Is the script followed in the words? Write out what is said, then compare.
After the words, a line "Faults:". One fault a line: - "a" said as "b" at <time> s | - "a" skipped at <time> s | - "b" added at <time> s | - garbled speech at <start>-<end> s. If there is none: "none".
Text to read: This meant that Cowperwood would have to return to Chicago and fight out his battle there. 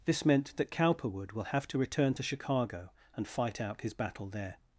This meant that Cowperwood will have to return to Chicago and fight out his battle there.
Faults:
- "would" said as "will" at 1.3 s